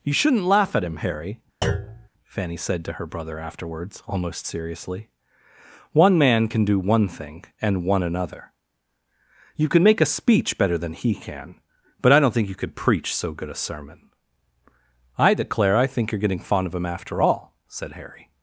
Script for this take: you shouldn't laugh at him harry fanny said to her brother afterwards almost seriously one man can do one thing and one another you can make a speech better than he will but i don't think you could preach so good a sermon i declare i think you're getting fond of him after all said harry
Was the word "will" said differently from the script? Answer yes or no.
yes